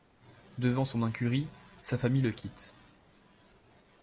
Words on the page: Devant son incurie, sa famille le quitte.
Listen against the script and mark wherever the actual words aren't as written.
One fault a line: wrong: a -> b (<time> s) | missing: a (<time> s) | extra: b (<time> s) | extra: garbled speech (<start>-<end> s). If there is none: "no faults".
no faults